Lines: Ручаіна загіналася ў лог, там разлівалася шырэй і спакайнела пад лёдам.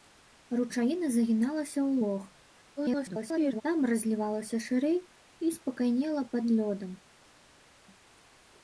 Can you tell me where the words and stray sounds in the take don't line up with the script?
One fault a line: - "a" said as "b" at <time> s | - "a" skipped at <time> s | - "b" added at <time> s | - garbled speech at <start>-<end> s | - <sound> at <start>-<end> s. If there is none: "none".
- garbled speech at 2.8-3.6 s